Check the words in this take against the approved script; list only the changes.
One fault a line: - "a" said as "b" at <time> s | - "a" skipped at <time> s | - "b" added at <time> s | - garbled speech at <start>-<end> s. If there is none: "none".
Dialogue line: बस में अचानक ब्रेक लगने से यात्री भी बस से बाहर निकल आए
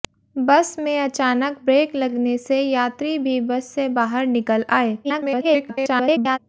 - garbled speech at 5.0-6.4 s